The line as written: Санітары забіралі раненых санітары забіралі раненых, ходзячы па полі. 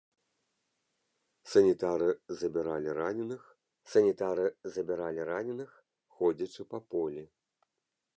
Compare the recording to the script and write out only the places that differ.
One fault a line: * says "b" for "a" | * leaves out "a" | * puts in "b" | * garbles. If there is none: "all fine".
all fine